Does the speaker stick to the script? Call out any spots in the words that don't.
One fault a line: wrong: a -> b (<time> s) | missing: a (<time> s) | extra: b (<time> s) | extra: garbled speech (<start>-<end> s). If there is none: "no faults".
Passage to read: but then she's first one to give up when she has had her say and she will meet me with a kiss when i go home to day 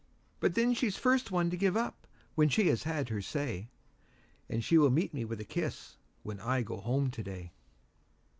no faults